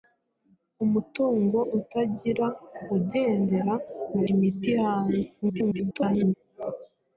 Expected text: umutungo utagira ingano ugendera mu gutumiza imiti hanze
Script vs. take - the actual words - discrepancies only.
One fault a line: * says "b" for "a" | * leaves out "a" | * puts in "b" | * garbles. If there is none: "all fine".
* leaves out "ingano"
* leaves out "gutumiza"
* garbles